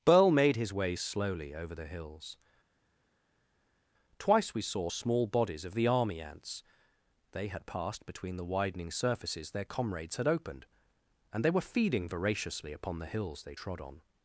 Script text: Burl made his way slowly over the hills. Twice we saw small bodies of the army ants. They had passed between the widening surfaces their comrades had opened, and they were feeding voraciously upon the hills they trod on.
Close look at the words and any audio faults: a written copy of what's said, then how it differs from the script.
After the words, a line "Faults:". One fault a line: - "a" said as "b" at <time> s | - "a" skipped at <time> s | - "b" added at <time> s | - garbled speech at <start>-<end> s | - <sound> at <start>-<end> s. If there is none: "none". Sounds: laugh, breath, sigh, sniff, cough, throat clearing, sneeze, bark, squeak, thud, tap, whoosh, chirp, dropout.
Burl made his way slowly over the hills. Twice we saw small bodies of the army ants. They had passed between the widening surfaces their comrades had opened, and they were feeding voraciously upon the hills they trod on.
Faults:
none